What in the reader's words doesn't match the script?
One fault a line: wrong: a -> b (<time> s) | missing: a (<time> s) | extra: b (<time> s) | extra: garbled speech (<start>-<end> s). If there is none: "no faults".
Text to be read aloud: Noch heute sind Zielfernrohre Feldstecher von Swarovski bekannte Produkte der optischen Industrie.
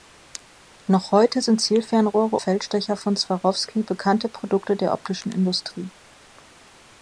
no faults